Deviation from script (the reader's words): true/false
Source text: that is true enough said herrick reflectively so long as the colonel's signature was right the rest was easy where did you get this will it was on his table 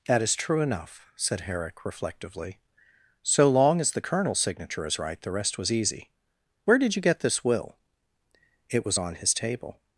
true